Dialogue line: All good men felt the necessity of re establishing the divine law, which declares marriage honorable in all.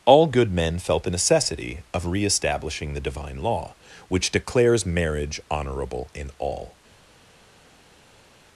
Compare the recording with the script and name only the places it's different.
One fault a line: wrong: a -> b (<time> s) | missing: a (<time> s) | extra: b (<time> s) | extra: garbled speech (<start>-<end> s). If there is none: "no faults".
no faults